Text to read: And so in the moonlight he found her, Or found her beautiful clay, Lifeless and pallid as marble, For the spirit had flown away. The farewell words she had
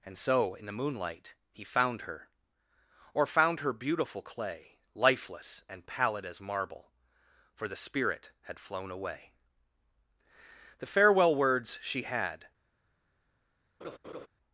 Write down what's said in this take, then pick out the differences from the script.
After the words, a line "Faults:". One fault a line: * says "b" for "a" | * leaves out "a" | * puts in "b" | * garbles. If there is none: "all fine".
And so in the moonlight he found her, Or found her beautiful clay, Lifeless and pallid as marble, For the spirit had flown away. The farewell words she had
Faults:
all fine